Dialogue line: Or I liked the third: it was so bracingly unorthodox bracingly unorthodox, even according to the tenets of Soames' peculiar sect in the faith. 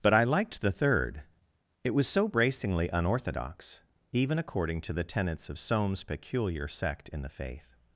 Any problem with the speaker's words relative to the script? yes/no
yes